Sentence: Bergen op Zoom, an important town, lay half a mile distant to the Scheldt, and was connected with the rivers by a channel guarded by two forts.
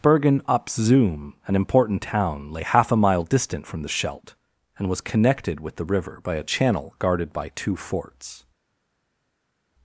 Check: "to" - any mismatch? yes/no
yes